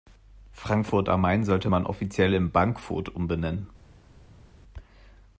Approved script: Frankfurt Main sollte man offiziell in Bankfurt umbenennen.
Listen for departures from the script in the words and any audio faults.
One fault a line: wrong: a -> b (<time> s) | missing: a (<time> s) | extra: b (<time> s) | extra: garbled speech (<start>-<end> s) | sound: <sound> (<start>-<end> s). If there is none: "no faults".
extra: am (1.1 s)